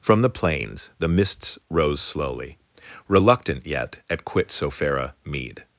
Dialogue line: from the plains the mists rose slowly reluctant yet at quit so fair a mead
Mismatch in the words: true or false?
false